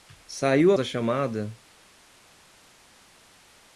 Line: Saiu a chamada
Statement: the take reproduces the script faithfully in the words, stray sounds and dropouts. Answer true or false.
true